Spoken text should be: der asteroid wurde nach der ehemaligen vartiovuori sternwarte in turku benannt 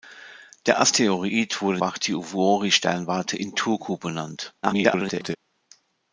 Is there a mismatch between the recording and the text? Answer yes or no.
yes